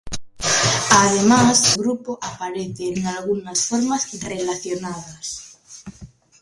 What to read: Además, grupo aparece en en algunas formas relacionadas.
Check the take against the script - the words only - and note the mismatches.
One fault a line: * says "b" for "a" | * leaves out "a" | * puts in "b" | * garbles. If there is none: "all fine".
all fine